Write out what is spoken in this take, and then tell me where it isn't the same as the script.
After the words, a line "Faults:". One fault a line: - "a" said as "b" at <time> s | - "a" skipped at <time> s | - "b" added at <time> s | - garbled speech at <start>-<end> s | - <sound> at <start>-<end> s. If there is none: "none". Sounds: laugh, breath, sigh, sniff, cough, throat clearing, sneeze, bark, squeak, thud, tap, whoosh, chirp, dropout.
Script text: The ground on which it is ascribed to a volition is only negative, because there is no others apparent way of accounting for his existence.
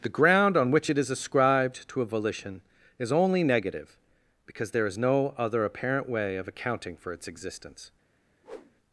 The ground on which it is ascribed to a volition is only negative, because there is no other apparent way of accounting for its existence.
Faults:
- "others" said as "other" at 5.4 s
- "his" said as "its" at 7.1 s
- whoosh at 8.4-8.8 s